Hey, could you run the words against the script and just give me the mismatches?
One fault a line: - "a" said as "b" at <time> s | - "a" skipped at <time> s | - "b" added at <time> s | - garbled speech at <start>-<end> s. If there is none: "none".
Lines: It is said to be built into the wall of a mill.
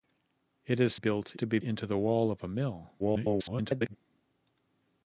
- "said" said as "built" at 0.9 s
- "built" skipped at 1.6 s
- garbled speech at 3.0-4.0 s